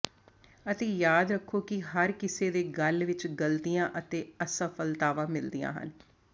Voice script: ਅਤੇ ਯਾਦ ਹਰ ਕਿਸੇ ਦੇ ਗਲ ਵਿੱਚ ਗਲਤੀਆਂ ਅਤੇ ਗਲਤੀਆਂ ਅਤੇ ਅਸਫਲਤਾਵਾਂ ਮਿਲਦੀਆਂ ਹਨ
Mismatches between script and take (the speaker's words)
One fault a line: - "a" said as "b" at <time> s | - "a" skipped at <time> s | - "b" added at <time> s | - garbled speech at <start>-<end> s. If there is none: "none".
- "ਰੱਖੋ ਕਿ" added at 1.3 s
- "ਗਲਤੀਆਂ ਅਤੇ" skipped at 4.2 s